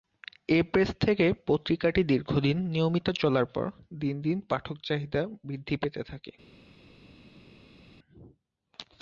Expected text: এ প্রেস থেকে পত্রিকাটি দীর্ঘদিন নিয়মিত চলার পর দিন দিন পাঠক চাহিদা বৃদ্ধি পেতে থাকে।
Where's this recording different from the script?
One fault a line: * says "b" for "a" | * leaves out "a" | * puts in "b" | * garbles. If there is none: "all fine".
all fine